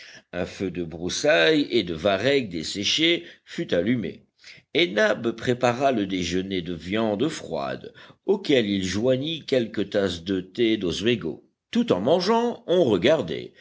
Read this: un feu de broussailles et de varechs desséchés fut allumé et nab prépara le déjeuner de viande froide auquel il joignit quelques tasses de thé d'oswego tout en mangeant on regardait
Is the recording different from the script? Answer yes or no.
no